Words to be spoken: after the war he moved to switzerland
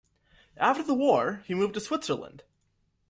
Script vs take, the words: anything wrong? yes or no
no